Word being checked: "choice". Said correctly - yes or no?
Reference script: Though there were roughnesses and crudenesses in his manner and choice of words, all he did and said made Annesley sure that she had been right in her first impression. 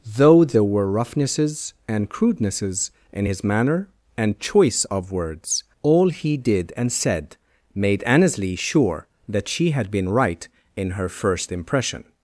yes